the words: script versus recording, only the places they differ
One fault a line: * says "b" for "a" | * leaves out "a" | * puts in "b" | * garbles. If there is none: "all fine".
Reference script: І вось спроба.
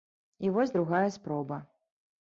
* puts in "другая"